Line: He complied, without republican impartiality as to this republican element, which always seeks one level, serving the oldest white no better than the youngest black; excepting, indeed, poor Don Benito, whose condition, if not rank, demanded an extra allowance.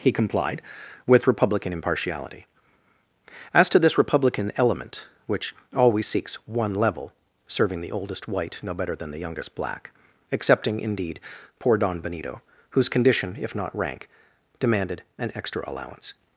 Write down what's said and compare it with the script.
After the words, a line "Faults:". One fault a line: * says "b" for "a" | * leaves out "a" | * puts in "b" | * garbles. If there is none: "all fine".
He complied, with republican impartiality as to this republican element, which always seeks one level, serving the oldest white no better than the youngest black; excepting, indeed, poor Don Benito, whose condition, if not rank, demanded an extra allowance.
Faults:
* says "with" for "without"